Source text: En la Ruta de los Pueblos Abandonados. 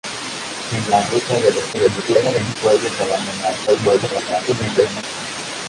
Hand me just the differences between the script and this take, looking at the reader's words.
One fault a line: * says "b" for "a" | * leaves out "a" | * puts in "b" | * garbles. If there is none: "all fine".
* garbles
* garbles